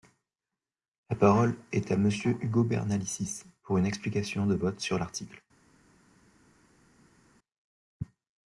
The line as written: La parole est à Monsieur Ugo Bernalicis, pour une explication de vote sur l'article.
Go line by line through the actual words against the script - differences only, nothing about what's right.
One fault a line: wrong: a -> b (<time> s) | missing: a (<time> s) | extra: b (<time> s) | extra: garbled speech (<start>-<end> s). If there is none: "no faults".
no faults